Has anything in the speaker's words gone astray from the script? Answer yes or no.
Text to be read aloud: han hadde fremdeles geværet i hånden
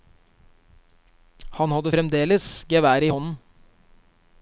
no